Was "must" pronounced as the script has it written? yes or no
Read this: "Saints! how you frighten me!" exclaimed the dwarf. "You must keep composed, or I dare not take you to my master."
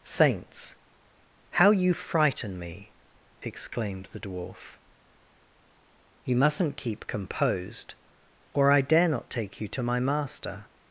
no